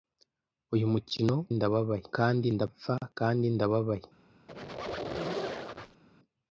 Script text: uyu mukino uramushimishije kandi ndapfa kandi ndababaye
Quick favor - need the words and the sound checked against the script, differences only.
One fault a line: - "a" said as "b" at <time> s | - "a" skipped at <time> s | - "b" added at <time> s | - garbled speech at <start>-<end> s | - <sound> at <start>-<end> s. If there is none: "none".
- "uramushimishije" said as "ndababaye" at 1.6 s
- squeak at 4.5-6.0 s